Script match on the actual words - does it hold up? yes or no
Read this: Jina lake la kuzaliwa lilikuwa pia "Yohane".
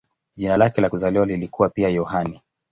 yes